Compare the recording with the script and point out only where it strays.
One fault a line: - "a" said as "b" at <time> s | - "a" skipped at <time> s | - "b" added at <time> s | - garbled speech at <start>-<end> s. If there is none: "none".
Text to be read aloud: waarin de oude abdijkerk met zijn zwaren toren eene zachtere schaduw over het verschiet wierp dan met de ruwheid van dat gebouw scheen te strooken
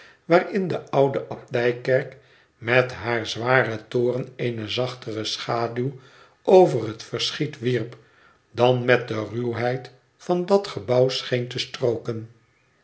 - "zijn" said as "haar" at 2.9 s